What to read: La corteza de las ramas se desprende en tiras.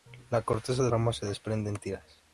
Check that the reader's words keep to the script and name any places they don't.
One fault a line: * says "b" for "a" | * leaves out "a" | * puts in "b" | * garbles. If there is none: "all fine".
* leaves out "las"